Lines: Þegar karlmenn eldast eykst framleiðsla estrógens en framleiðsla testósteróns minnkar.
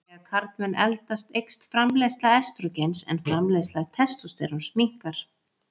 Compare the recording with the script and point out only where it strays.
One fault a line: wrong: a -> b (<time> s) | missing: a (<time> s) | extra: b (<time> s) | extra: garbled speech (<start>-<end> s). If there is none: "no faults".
no faults